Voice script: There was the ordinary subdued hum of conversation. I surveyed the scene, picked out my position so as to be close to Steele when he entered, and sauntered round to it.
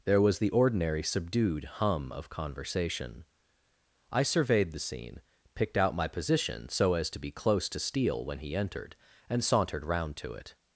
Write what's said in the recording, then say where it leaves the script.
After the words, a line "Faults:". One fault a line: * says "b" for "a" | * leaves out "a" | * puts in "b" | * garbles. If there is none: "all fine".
There was the ordinary subdued hum of conversation. I surveyed the scene, picked out my position so as to be close to Steele when he entered, and sauntered round to it.
Faults:
all fine